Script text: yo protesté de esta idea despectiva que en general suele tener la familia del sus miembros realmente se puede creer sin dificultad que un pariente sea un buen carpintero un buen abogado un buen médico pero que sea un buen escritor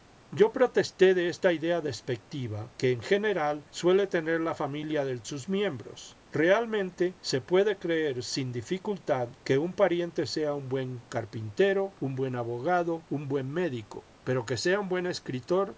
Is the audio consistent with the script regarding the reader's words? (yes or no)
yes